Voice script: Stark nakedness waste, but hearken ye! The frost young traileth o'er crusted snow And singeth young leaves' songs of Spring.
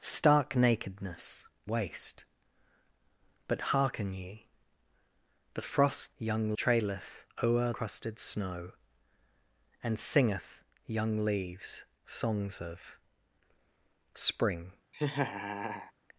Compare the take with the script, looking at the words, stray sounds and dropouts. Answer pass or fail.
fail